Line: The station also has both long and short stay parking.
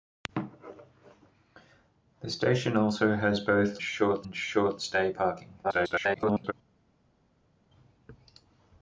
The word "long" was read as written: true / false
false